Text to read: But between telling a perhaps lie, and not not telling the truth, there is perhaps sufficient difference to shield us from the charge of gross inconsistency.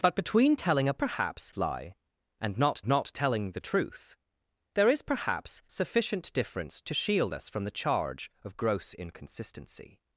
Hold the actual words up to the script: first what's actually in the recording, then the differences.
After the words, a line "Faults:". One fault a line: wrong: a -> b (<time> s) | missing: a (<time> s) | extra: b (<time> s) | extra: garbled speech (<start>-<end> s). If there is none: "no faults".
But between telling a perhaps lie, and not not telling the truth, there is perhaps sufficient difference to shield us from the charge of gross inconsistency.
Faults:
no faults